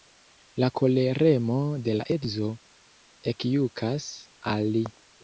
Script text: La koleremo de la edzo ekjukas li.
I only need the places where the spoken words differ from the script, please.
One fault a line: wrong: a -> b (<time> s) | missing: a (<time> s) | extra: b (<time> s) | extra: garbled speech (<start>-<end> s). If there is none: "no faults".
extra: al (4.6 s)